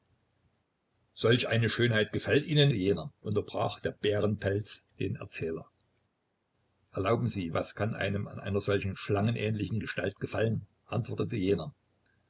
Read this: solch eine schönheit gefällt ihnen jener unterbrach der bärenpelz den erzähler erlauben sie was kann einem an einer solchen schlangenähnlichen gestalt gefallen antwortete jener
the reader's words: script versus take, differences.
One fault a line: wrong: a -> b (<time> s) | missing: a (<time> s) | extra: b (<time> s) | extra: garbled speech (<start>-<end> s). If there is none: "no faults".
no faults